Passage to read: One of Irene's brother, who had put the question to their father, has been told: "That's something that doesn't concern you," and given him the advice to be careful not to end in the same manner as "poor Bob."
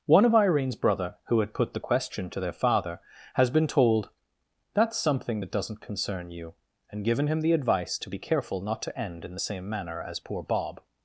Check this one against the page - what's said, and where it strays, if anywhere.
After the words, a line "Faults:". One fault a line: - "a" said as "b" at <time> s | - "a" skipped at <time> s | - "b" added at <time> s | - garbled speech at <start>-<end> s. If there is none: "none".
One of Irene's brother, who had put the question to their father, has been told: "That's something that doesn't concern you," and given him the advice to be careful not to end in the same manner as "poor Bob."
Faults:
none